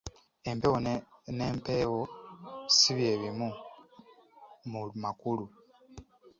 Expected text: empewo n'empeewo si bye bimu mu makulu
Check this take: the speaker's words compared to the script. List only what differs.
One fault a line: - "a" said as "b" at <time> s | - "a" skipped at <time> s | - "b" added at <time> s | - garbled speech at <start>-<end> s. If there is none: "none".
none